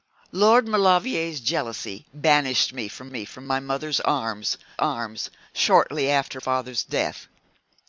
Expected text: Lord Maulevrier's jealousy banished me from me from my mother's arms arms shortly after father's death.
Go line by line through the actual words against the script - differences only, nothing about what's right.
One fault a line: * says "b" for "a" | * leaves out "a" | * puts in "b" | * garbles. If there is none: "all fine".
all fine